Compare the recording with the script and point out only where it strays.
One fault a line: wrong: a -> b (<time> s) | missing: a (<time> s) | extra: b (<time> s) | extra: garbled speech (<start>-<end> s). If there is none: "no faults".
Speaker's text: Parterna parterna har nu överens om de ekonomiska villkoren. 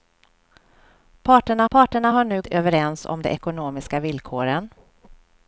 no faults